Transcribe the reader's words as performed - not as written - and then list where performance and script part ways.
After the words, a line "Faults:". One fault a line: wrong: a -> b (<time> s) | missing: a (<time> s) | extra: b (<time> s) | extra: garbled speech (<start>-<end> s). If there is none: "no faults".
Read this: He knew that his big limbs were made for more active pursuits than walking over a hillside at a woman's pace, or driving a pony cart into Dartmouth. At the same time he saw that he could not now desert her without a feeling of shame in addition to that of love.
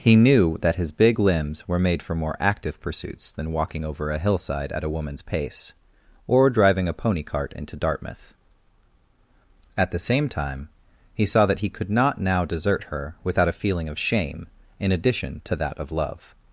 He knew that his big limbs were made for more active pursuits than walking over a hillside at a woman's pace, or driving a pony cart into Dartmouth. At the same time he saw that he could not now desert her without a feeling of shame in addition to that of love.
Faults:
no faults